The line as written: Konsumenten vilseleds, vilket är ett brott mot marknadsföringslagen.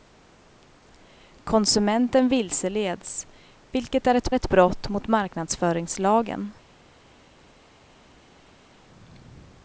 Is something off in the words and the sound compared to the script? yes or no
yes